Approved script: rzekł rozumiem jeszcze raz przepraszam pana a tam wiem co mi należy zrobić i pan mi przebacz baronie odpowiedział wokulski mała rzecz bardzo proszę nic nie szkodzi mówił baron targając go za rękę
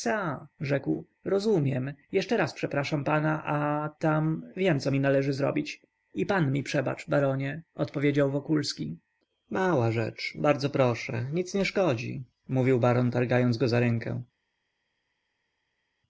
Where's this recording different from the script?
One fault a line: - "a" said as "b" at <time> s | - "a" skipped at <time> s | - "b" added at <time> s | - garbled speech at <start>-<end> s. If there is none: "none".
none